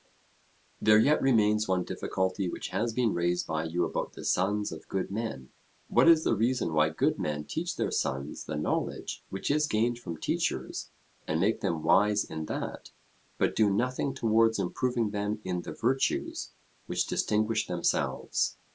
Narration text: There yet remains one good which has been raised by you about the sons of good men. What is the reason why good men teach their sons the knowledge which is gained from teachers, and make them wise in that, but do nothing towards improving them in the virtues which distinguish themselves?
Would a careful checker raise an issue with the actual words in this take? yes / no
yes